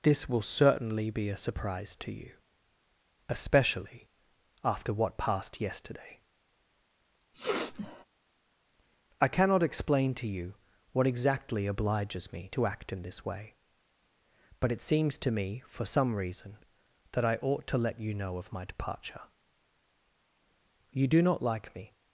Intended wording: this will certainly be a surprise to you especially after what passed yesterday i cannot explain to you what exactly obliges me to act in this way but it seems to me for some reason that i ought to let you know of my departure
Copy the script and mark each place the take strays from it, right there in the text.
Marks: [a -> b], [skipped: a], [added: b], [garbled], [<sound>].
this will certainly be a surprise to you especially after what passed yesterday [sniff] i cannot explain to you what exactly obliges me to act in this way but it seems to me for some reason that i ought to let you know of my departure [added: you do not like me]